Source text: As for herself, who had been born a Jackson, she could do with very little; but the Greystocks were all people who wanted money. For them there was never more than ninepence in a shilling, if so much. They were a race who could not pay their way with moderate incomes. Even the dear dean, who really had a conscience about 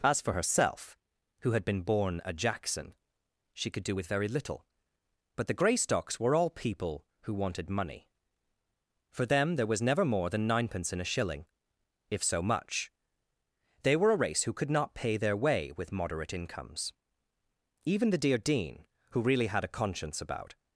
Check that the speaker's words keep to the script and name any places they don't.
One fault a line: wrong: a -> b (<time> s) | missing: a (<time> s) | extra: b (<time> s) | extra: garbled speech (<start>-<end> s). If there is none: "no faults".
no faults